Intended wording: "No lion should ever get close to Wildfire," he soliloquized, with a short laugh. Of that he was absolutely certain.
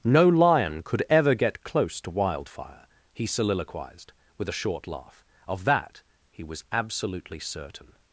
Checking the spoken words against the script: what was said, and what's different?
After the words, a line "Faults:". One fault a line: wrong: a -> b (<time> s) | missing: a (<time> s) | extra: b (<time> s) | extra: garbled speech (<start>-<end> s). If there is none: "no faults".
"No lion could ever get close to Wildfire," he soliloquized, with a short laugh. Of that he was absolutely certain.
Faults:
wrong: should -> could (0.8 s)